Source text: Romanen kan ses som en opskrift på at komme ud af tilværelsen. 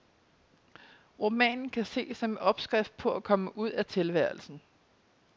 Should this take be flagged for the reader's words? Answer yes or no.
no